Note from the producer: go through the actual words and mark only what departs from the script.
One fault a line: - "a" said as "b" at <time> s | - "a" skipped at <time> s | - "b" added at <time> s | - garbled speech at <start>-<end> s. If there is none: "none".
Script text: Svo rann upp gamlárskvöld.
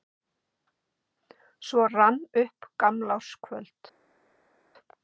none